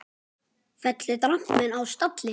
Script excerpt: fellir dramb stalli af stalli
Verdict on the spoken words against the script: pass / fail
fail